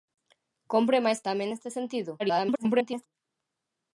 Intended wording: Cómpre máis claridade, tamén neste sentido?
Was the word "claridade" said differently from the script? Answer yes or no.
yes